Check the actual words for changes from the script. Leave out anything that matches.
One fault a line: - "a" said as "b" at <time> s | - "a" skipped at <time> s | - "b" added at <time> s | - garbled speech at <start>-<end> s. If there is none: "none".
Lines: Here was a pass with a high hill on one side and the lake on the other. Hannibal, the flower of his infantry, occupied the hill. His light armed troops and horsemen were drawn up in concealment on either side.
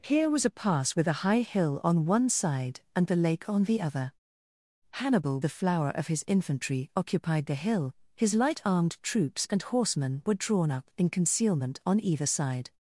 none